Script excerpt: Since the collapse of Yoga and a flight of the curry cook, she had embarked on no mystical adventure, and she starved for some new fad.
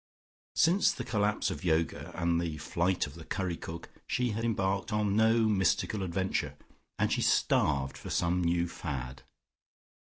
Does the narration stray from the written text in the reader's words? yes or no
yes